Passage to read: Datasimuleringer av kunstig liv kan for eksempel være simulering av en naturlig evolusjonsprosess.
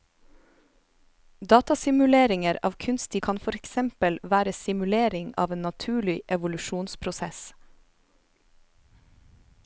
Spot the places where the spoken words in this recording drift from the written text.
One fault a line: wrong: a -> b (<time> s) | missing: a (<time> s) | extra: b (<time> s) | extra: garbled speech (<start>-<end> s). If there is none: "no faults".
missing: liv (3.2 s)